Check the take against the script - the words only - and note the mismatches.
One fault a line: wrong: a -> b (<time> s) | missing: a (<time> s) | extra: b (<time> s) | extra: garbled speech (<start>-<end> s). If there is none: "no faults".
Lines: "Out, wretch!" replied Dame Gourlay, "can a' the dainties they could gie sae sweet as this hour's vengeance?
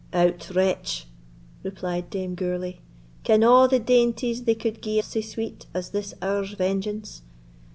no faults